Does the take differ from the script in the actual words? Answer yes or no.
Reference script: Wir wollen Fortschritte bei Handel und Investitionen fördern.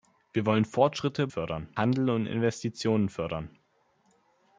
yes